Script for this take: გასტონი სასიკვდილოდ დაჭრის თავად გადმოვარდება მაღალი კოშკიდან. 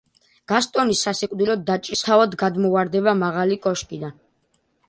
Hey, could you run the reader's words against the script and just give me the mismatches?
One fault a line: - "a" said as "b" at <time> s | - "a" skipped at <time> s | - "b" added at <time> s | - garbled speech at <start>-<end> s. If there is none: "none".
none